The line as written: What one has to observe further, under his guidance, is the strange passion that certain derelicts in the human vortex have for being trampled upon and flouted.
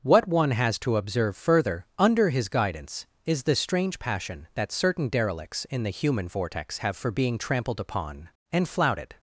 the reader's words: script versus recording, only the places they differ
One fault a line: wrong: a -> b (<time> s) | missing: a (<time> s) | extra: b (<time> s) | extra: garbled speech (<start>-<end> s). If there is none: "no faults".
no faults